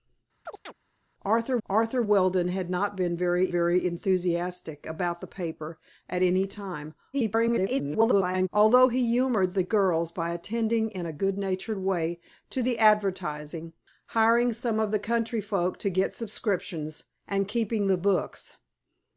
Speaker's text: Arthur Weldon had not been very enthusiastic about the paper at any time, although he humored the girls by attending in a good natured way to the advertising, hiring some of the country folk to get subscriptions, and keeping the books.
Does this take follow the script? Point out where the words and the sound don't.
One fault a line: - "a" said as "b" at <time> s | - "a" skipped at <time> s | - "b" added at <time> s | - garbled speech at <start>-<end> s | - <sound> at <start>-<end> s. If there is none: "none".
- chirp at 0.5-0.7 s
- "arthur" added at 1.7 s
- "very" added at 3.5 s
- garbled speech at 7.1-8.5 s